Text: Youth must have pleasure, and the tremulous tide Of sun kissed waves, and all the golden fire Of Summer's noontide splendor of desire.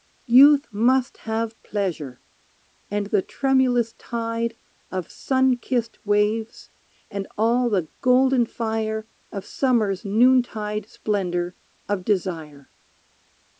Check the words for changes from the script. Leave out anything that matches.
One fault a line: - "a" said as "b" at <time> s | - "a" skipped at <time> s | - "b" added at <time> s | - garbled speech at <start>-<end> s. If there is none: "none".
none